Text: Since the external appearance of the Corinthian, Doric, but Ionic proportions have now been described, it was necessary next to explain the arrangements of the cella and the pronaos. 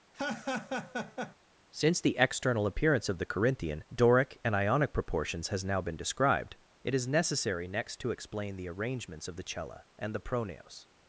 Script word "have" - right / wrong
wrong